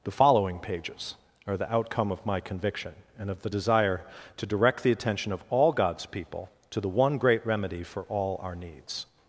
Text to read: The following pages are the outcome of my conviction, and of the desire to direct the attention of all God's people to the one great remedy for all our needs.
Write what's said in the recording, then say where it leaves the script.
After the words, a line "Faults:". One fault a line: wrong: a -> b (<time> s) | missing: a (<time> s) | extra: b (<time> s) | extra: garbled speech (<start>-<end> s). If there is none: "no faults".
The following pages are the outcome of my conviction, and of the desire to direct the attention of all God's people to the one great remedy for all our needs.
Faults:
no faults